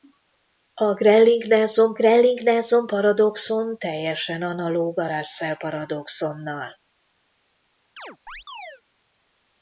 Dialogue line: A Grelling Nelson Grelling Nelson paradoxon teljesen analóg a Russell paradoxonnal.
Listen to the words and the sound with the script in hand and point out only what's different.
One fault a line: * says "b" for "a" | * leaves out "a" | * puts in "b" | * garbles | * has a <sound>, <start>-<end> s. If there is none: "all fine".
* has a chirp, 8.0-8.8 s